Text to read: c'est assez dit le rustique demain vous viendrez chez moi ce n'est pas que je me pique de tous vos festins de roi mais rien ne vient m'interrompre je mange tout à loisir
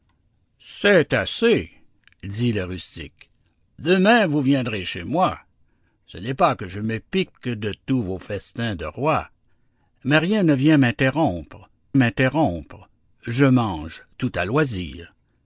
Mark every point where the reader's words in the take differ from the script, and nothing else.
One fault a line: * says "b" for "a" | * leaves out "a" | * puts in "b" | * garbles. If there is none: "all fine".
* puts in "m'interrompre"